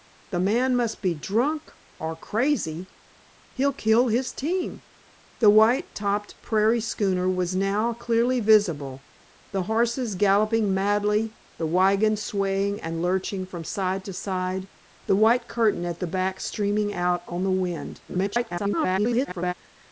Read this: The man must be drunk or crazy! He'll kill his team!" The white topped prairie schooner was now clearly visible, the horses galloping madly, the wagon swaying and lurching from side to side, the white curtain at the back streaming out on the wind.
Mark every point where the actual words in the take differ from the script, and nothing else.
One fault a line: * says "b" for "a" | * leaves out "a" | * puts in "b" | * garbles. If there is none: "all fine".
* garbles